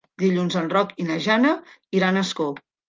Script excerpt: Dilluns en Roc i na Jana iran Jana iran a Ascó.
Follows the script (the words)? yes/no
no